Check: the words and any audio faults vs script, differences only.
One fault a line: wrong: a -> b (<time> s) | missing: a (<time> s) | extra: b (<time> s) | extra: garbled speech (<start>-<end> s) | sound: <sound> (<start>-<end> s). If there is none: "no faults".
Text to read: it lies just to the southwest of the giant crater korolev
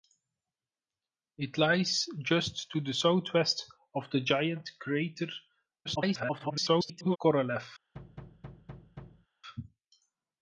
extra: garbled speech (5.8-7.2 s)
sound: thud (7.9-9.3 s)